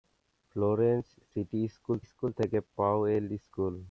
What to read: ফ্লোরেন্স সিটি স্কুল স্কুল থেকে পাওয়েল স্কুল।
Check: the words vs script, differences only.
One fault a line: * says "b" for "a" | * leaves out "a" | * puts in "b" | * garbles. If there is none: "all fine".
all fine